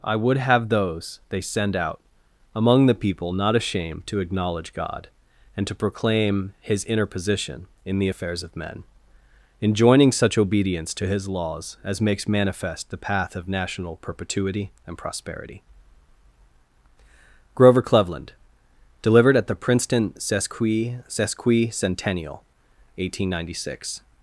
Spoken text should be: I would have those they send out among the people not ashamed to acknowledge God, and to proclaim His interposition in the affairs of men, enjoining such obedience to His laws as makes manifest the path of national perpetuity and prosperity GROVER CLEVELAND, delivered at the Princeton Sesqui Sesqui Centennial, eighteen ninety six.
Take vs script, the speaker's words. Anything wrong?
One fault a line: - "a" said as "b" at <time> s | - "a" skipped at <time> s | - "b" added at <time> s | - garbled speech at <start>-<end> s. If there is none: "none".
none